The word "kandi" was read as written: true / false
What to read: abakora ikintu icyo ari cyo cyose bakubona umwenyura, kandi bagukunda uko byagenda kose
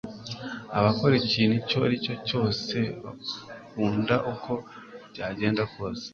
false